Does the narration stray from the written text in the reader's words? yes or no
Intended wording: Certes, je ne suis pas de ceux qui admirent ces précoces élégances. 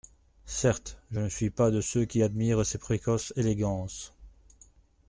no